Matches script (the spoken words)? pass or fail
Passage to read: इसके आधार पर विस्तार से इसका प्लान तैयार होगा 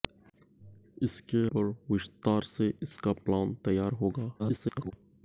fail